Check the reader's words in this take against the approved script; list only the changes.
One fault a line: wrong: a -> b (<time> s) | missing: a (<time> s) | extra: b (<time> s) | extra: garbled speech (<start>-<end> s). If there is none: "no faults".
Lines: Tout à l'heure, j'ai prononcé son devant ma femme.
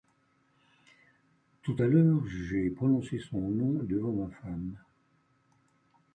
extra: nom (3.4 s)